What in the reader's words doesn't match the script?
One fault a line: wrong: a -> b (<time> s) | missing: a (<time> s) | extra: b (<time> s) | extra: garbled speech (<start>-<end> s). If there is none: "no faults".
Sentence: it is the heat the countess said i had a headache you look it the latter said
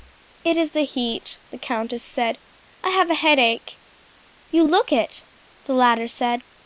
wrong: had -> have (2.9 s)